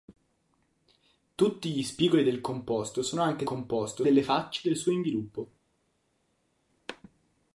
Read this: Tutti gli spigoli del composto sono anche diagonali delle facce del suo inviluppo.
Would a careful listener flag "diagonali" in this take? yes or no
yes